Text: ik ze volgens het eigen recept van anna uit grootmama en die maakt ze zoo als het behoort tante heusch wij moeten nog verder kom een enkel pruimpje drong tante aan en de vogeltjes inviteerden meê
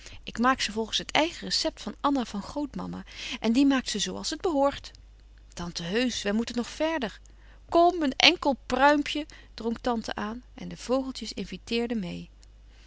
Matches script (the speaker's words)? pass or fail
fail